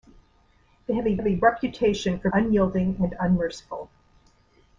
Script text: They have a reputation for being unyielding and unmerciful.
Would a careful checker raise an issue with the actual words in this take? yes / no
yes